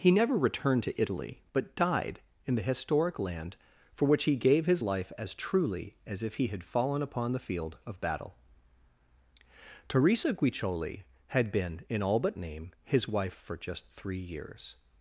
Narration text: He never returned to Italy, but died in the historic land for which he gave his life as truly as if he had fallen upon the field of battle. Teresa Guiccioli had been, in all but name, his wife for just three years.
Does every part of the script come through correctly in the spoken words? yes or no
yes